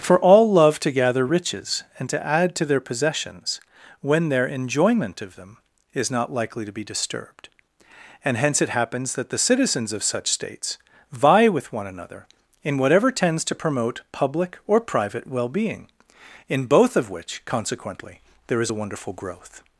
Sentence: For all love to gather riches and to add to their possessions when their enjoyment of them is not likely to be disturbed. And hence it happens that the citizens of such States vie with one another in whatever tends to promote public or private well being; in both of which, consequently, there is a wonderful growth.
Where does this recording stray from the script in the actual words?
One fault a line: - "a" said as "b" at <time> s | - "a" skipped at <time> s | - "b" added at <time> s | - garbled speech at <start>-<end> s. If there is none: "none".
none